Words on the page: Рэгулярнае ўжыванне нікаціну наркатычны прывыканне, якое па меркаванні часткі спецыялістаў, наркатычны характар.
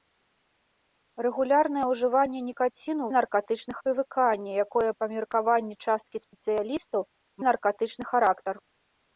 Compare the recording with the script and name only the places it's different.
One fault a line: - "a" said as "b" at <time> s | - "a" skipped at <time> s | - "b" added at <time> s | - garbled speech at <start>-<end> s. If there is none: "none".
none